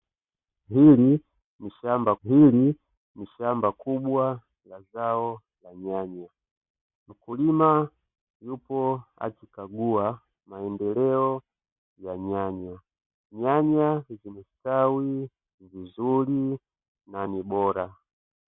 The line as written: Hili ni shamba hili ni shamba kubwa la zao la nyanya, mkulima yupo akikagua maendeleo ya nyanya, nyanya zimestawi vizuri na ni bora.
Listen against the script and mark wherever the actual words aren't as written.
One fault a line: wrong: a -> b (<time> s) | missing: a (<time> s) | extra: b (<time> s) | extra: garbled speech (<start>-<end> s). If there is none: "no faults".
no faults